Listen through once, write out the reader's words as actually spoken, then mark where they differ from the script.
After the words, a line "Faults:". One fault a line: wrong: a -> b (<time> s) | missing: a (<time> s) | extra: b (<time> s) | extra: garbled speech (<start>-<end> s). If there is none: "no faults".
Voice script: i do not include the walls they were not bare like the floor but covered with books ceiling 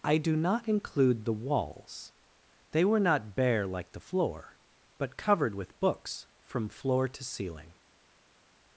i do not include the walls they were not bare like the floor but covered with books from floor to ceiling
Faults:
extra: from floor to (6.4 s)